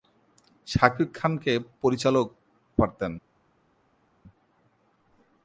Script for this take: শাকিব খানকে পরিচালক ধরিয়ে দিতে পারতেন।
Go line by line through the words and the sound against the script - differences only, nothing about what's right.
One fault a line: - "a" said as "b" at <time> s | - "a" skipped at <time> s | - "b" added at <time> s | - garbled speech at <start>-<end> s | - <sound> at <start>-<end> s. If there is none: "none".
- "ধরিয়ে দিতে" skipped at 2.3 s